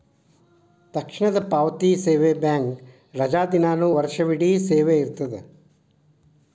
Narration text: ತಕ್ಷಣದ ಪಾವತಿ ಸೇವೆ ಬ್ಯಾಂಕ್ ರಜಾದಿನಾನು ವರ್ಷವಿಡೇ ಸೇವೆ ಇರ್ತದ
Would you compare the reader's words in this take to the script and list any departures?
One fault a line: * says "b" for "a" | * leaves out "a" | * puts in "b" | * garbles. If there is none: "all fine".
all fine